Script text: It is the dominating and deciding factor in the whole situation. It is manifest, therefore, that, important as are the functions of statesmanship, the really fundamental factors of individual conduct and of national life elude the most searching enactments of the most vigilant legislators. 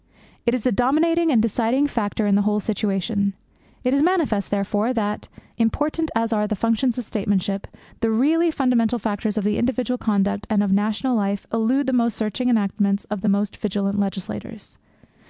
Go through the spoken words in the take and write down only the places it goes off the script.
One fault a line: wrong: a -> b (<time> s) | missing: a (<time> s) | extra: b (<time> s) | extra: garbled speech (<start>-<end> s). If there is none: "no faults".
no faults